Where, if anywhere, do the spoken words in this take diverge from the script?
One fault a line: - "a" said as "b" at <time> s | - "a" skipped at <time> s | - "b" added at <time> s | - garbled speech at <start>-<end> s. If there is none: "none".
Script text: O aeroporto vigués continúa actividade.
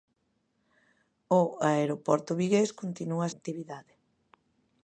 none